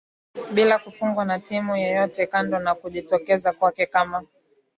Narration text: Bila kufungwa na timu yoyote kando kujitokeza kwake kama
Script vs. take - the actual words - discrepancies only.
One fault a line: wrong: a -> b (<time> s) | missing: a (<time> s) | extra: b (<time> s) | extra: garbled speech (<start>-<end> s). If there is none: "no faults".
extra: na (2.6 s)